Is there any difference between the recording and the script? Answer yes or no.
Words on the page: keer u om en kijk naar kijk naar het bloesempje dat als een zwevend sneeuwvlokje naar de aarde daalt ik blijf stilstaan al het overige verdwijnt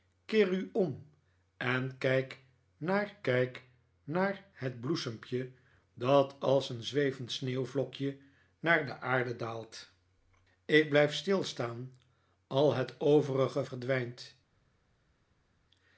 no